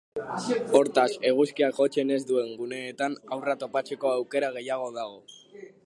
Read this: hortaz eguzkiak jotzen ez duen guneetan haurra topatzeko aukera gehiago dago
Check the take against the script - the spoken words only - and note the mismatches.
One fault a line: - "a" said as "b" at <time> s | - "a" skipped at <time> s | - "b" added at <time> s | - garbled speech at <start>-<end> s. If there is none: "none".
none